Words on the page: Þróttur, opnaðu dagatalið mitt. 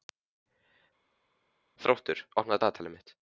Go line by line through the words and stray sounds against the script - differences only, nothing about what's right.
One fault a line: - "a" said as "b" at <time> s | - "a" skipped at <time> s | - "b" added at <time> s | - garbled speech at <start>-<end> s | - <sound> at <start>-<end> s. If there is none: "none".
none